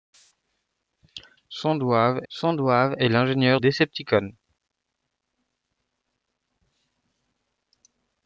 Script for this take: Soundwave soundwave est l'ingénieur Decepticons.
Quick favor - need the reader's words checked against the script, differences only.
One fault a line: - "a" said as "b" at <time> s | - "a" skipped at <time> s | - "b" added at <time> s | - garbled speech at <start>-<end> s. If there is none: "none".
none